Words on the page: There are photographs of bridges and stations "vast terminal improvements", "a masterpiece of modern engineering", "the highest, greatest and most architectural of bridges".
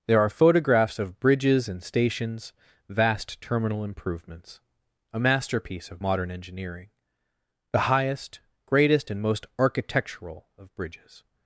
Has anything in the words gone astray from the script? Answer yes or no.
no